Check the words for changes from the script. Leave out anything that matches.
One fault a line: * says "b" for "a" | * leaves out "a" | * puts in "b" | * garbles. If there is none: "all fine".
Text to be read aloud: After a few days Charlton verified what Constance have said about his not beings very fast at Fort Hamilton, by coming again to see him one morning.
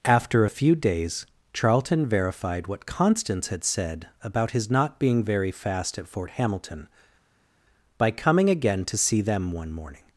* says "had" for "have"
* says "being" for "beings"
* says "them" for "him"